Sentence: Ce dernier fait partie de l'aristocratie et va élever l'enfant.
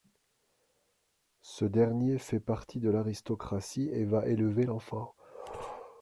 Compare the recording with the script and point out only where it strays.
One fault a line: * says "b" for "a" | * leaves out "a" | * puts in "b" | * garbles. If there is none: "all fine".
all fine